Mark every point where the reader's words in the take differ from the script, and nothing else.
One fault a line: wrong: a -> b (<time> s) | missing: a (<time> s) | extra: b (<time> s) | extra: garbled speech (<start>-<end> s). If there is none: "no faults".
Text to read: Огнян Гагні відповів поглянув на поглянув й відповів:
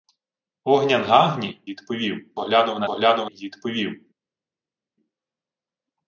no faults